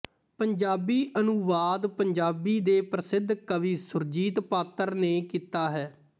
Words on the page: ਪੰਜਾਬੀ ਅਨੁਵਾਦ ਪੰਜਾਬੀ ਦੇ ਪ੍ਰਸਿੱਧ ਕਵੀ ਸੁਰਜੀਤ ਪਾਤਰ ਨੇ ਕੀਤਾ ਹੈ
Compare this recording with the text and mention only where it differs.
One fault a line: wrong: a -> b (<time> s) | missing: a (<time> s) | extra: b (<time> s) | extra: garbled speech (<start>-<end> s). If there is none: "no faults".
no faults